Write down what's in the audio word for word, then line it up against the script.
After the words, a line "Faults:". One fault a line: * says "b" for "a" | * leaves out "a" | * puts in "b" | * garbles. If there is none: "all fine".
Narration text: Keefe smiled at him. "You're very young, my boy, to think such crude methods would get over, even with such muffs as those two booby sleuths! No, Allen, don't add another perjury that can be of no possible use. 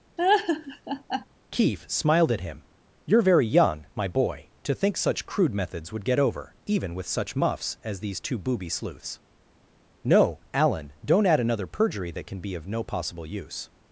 Keefe smiled at him. "You're very young, my boy, to think such crude methods would get over, even with such muffs as these two booby sleuths! No, Allen, don't add another perjury that can be of no possible use.
Faults:
* says "these" for "those"